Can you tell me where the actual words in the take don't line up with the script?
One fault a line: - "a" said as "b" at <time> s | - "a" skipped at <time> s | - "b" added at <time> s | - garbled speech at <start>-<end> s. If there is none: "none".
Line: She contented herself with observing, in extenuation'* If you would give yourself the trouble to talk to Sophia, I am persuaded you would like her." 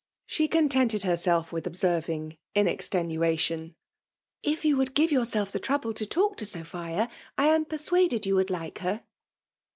none